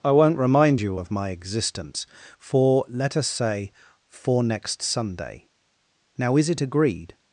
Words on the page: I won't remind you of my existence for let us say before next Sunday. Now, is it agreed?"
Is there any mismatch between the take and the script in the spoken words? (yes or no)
yes